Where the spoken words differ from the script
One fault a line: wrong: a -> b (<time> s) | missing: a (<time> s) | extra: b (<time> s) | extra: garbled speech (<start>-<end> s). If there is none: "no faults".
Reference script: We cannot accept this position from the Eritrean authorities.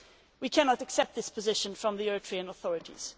no faults